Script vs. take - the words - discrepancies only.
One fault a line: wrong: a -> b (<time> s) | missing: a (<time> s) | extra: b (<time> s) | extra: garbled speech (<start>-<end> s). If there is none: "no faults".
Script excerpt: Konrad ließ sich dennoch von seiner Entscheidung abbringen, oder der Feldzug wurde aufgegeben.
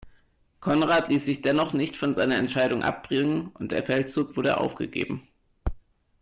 extra: nicht (1.7 s)
wrong: oder -> und (3.5 s)